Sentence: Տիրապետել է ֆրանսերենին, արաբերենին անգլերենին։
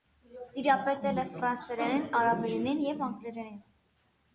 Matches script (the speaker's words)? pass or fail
fail